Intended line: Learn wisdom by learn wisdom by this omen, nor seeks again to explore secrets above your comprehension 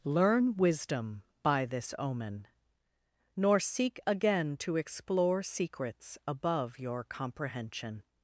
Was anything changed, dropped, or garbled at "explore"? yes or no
no